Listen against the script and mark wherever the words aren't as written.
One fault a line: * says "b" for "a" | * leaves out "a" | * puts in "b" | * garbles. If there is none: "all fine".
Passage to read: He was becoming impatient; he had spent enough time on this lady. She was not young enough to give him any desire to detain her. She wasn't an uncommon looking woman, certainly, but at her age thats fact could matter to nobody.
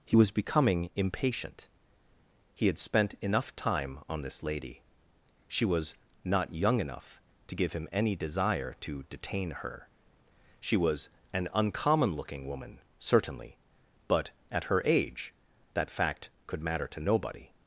* says "was" for "wasn't"
* says "that" for "thats"